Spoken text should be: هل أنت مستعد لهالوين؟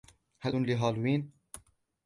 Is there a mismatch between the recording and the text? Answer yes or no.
yes